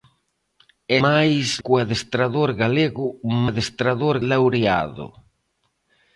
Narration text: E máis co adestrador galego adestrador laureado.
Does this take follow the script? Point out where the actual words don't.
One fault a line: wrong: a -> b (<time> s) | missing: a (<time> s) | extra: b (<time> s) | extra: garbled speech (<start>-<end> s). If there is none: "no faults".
no faults